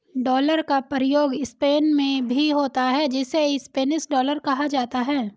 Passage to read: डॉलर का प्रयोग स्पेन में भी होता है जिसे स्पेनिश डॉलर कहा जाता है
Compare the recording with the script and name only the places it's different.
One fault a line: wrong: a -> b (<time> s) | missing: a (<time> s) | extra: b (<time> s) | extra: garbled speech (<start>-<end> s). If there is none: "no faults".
no faults